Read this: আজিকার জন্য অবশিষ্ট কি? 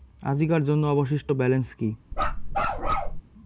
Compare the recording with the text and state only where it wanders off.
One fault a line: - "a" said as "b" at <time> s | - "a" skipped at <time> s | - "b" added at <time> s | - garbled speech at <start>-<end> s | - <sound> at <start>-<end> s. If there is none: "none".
- "ব্যালেন্স" added at 1.3 s
- bark at 2.1-3.2 s